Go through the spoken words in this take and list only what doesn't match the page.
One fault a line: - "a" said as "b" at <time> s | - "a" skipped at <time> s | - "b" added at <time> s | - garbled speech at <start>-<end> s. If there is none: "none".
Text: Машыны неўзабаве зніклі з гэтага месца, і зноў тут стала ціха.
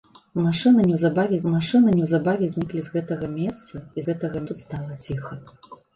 - "машыны неўзабаве" added at 1.5 s
- "зноў" said as "гэтага" at 4.1 s